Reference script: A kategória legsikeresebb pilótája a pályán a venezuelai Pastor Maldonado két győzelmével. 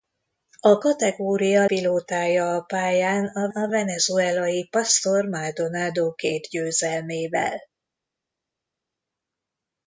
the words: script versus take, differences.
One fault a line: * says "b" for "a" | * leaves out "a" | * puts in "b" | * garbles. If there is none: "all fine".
* leaves out "legsikeresebb"
* puts in "a"